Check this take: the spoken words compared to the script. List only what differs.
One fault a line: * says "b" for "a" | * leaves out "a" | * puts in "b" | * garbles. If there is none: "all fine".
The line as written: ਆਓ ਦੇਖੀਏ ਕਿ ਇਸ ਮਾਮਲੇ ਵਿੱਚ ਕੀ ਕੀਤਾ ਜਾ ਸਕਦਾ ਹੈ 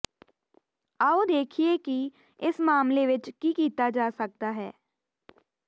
all fine